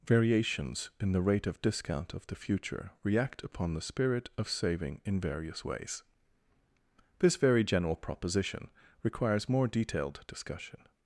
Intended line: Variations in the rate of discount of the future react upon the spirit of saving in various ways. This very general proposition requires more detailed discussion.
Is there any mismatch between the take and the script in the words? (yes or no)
no